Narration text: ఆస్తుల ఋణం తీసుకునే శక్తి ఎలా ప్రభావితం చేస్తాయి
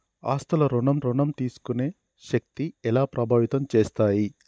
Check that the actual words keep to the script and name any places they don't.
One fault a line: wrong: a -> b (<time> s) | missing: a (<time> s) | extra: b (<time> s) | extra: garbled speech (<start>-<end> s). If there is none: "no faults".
extra: ఋణం (1.0 s)